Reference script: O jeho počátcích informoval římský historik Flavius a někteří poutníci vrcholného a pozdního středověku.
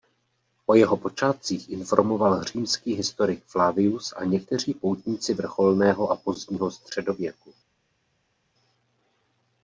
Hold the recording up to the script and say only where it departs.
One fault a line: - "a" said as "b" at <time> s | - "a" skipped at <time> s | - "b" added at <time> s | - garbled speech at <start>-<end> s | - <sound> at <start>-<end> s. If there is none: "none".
none